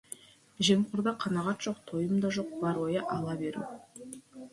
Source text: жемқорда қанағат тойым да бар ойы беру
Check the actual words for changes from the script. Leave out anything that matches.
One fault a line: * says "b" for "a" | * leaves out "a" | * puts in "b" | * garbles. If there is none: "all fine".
* puts in "жоқ"
* puts in "жоқ"
* puts in "ала"